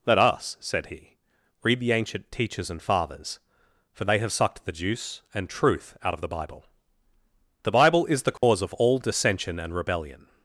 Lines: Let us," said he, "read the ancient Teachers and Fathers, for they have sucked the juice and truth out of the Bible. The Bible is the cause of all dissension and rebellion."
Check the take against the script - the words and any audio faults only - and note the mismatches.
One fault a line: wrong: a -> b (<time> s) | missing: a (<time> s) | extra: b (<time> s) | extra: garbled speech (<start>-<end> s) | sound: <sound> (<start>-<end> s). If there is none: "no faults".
sound: dropout (8.4-8.4 s)